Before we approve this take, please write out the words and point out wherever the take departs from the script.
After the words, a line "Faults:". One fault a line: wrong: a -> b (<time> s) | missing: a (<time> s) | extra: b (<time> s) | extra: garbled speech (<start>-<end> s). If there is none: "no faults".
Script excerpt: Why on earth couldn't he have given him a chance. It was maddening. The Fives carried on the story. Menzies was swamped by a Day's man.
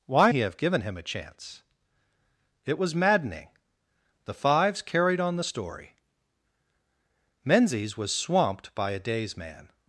Why he have given him a chance. It was maddening. The Fives carried on the story. Menzies was swamped by a Day's man.
Faults:
missing: on earth couldn't (0.3 s)